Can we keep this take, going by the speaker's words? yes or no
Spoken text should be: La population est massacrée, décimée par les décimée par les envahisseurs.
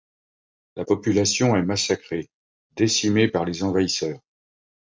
no